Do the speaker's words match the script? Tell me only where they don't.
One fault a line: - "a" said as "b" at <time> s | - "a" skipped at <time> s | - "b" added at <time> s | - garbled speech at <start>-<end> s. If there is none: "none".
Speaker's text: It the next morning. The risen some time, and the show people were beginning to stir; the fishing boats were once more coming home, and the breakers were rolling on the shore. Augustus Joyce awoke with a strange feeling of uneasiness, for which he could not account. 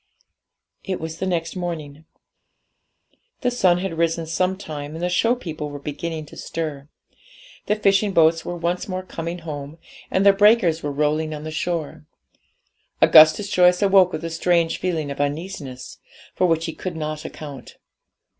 - "was" added at 1.0 s
- "sun had" added at 3.5 s